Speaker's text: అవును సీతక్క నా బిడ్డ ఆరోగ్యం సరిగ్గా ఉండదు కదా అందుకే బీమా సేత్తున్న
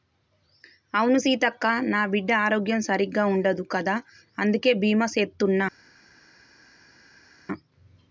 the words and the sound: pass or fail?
pass